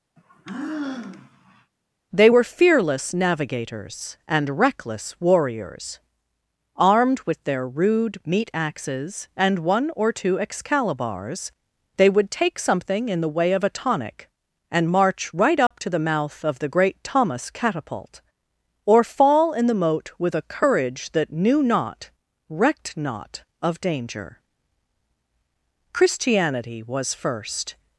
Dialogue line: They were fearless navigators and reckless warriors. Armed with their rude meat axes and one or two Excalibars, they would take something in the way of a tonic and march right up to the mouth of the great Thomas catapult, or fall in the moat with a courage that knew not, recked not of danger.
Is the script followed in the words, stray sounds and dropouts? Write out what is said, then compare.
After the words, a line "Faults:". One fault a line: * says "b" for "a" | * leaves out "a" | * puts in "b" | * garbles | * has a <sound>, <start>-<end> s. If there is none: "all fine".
They were fearless navigators and reckless warriors. Armed with their rude meat axes and one or two Excalibars, they would take something in the way of a tonic and march right up to the mouth of the great Thomas catapult, or fall in the moat with a courage that knew not, recked not of danger. Christianity was first
Faults:
* has a sigh, 0.2-1.7 s
* has a dropout, 15.7-15.7 s
* puts in "Christianity was first"